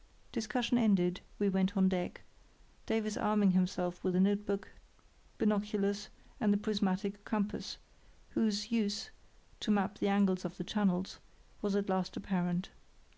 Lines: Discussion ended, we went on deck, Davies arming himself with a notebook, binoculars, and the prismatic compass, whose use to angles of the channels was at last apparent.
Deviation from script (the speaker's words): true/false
true